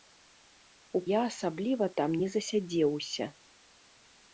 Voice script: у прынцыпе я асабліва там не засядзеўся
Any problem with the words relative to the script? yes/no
yes